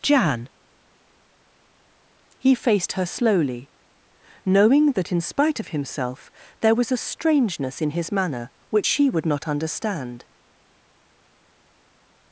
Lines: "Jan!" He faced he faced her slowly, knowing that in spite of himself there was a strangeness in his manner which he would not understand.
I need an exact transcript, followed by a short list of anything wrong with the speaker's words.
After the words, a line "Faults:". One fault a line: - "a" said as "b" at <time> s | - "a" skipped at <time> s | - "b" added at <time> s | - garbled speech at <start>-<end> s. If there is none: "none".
"Jan!" He faced her slowly, knowing that in spite of himself there was a strangeness in his manner which she would not understand.
Faults:
- "he faced" skipped at 2.9 s
- "he" said as "she" at 8.8 s